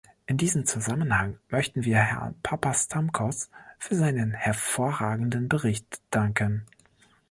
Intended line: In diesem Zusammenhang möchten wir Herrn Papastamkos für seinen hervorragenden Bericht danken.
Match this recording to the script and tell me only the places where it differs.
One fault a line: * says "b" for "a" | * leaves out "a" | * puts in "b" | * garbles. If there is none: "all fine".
all fine